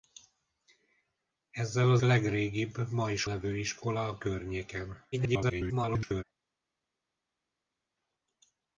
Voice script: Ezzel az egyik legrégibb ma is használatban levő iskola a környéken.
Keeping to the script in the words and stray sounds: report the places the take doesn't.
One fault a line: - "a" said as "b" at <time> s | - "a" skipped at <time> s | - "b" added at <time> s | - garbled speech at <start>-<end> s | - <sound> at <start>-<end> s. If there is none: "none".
- "egyik" skipped at 2.0 s
- "használatban" skipped at 3.2 s
- garbled speech at 5.1-6.2 s